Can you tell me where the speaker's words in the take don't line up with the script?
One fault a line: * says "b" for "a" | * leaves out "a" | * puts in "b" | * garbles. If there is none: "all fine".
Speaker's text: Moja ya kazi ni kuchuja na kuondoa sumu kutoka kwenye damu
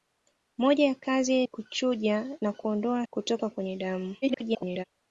* leaves out "ni"
* leaves out "sumu"
* garbles